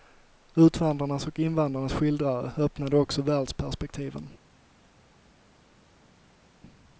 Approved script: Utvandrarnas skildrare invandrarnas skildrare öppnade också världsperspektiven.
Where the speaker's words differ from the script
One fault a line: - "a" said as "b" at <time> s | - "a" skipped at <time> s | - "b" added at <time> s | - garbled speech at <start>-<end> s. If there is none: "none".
- "skildrare" said as "och" at 1.3 s